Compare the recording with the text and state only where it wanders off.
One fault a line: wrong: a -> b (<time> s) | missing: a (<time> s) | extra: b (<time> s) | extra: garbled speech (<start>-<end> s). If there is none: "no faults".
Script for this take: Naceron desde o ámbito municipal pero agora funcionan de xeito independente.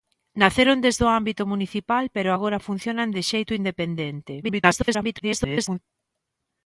extra: garbled speech (4.4-5.8 s)